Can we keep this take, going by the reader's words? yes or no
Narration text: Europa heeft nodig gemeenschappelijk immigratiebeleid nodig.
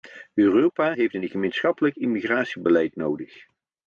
no